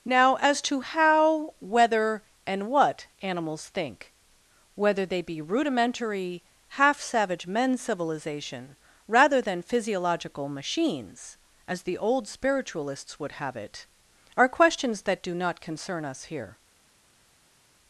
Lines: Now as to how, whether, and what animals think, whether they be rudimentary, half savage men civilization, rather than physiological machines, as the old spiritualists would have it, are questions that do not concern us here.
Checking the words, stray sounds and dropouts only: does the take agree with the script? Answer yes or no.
yes